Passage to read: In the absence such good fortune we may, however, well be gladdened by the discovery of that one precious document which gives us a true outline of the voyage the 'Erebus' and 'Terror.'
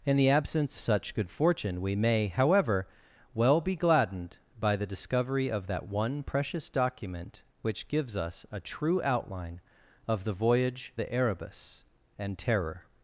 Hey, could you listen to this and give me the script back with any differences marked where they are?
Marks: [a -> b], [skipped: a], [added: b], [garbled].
In the absence such good fortune we may, however, well be gladdened by the discovery of that one precious document which gives us a true outline of the voyage the 'Erebus' and 'Terror.'